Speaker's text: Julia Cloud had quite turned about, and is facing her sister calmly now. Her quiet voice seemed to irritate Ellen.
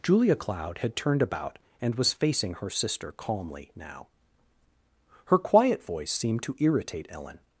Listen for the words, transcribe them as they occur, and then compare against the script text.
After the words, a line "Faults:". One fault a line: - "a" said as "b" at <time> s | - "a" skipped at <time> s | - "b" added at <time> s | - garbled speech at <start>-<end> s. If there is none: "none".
Julia Cloud had turned about, and was facing her sister calmly now. Her quiet voice seemed to irritate Ellen.
Faults:
- "quite" skipped at 0.9 s
- "is" said as "was" at 1.9 s